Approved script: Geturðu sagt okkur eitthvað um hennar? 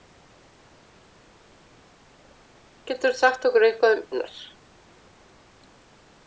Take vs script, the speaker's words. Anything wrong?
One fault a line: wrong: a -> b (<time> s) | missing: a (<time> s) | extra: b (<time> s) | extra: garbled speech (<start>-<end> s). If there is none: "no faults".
no faults